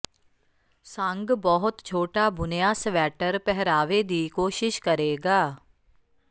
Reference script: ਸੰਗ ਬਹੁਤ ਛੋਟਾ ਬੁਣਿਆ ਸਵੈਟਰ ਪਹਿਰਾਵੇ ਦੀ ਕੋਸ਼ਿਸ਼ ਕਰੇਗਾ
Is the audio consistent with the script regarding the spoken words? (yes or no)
yes